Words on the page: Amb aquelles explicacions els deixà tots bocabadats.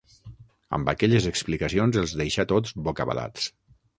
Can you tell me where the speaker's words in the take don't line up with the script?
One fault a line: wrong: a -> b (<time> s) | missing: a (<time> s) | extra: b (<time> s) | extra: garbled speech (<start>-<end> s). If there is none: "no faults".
no faults